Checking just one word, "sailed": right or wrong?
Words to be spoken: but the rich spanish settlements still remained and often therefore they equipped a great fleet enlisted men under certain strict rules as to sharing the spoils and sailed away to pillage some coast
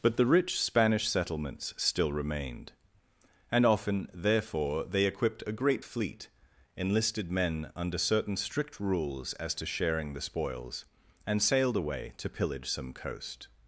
right